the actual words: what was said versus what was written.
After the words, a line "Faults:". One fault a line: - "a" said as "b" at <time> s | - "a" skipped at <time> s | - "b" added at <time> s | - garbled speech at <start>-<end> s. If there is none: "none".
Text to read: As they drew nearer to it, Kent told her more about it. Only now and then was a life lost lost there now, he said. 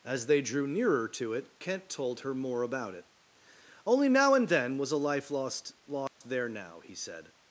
As they drew nearer to it, Kent told her more about it. Only now and then was a life lost lost there now, he said.
Faults:
none